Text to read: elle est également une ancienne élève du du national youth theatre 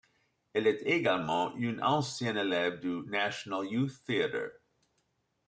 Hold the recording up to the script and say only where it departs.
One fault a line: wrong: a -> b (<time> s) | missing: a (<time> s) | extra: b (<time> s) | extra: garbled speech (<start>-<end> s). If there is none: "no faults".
missing: du (3.1 s)